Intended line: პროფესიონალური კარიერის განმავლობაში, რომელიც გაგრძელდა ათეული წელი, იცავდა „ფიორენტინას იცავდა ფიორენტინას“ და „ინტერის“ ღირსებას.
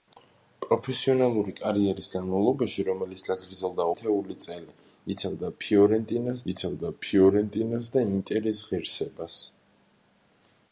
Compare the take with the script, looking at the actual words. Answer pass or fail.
pass